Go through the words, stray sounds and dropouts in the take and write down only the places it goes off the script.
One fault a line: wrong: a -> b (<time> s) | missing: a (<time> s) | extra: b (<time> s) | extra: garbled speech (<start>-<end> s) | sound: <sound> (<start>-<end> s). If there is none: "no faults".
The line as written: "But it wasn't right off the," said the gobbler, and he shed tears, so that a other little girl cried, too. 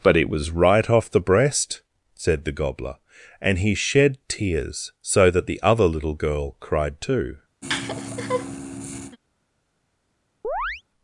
wrong: wasn't -> was (0.3 s)
extra: breast (1.2 s)
wrong: a -> the (5.4 s)
sound: laugh (7.6-9.2 s)
sound: chirp (10.4-10.8 s)